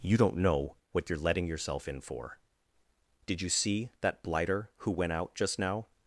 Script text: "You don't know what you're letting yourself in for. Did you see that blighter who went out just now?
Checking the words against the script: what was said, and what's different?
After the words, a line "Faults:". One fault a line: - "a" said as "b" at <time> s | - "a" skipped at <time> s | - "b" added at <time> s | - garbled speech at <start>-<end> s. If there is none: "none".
"You don't know what you're letting yourself in for. Did you see that blighter who went out just now?
Faults:
none